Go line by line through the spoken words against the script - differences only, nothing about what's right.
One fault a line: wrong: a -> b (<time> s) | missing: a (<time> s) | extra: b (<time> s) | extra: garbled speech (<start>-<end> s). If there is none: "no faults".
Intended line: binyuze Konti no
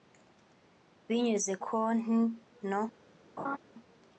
no faults